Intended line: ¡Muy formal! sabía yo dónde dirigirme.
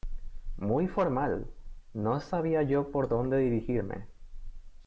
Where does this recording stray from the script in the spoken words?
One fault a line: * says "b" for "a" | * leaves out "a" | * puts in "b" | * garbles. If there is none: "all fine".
* puts in "no"
* puts in "por"